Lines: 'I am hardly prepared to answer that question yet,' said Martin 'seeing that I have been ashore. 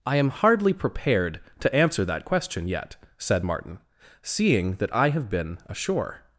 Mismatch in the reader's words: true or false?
false